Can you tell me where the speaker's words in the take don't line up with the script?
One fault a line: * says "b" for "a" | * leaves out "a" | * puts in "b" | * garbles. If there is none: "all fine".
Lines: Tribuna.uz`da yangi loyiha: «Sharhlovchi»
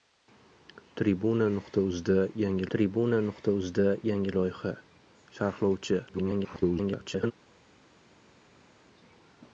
* puts in "tribuna.uz`da yangi"
* garbles